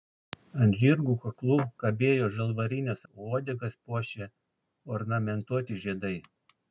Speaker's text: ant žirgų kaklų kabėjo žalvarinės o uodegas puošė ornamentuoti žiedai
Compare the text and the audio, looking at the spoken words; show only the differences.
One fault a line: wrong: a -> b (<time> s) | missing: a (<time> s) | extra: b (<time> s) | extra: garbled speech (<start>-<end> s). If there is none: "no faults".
no faults